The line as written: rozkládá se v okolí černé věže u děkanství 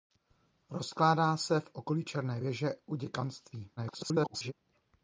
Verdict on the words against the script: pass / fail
fail